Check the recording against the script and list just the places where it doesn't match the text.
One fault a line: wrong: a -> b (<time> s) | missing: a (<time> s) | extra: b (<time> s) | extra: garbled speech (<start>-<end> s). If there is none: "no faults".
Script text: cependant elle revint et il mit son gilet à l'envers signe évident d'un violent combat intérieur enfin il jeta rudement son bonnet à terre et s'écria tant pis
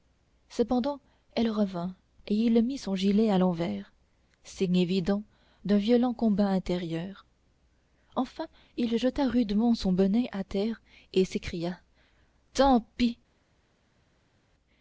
no faults